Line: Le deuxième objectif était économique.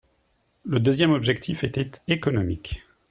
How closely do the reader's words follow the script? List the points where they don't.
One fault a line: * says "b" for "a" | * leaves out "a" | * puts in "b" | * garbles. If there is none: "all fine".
all fine